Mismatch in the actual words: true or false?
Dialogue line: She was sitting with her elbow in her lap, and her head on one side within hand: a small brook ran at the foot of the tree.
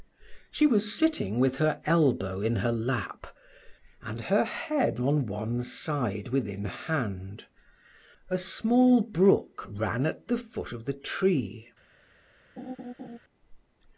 false